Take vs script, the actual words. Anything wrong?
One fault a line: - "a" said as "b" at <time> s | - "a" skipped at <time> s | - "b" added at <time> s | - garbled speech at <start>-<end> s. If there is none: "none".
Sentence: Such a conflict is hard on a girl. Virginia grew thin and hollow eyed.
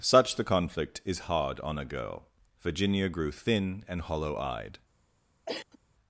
- "a" said as "the" at 0.3 s